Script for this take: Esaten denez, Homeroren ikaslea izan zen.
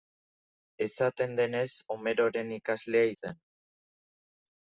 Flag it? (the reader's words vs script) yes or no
yes